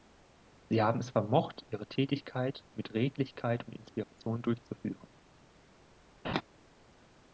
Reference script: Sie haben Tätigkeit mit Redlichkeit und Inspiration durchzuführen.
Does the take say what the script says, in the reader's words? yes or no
no